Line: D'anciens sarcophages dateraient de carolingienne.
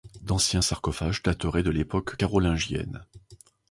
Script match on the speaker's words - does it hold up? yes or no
no